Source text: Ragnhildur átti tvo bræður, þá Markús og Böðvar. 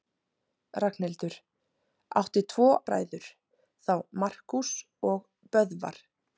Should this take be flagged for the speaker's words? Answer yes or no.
no